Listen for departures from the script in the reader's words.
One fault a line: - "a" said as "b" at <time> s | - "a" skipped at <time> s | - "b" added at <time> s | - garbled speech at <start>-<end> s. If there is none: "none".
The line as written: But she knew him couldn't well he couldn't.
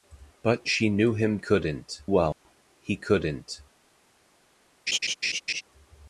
none